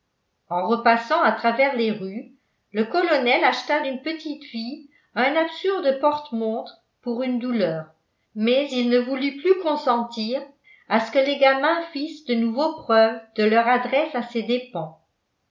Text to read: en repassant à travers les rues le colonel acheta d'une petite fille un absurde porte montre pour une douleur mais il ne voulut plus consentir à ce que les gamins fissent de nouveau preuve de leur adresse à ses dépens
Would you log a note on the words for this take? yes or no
no